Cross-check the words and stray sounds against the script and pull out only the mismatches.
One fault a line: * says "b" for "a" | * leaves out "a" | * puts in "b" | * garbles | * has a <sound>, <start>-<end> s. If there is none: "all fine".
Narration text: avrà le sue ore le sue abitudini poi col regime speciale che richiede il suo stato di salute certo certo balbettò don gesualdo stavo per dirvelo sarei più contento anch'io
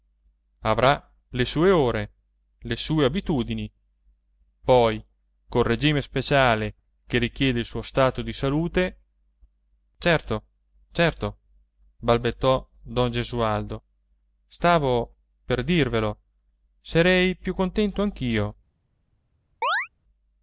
* has a chirp, 19.6-19.9 s